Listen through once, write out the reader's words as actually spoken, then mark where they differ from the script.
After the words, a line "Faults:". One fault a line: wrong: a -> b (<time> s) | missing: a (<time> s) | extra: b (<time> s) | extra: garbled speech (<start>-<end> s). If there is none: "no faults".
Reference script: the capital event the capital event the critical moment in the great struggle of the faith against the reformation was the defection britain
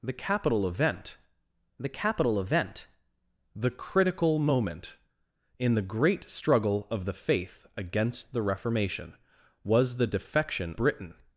the capital event the capital event the critical moment in the great struggle of the faith against the reformation was the defection britain
Faults:
no faults